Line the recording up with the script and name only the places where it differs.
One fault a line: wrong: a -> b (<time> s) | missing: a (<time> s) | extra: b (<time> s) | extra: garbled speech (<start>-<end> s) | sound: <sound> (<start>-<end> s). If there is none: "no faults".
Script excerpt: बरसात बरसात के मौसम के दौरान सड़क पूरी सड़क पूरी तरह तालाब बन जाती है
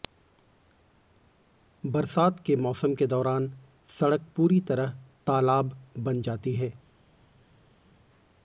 missing: बरसात (2.4 s)
missing: सड़क पूरी (4.6 s)